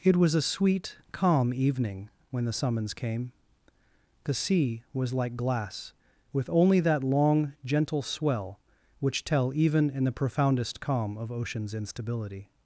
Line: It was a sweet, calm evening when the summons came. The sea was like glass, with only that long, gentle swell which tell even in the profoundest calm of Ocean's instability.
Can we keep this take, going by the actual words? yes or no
yes